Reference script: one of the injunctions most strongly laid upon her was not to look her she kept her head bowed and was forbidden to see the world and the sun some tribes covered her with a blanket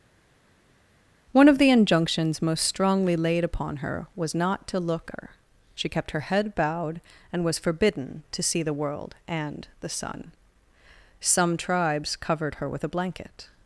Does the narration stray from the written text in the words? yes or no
no